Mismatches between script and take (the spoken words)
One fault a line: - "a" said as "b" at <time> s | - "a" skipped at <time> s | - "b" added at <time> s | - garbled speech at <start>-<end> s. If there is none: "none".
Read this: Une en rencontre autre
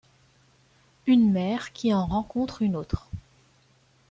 - "mère qui" added at 1.3 s
- "une" added at 2.6 s